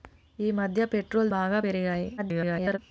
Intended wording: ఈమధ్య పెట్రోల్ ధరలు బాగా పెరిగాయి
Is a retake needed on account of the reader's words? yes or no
yes